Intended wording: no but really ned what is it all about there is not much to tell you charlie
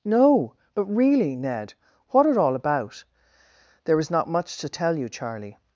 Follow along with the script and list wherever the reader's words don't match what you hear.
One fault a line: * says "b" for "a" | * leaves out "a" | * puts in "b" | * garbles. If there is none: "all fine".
* leaves out "is"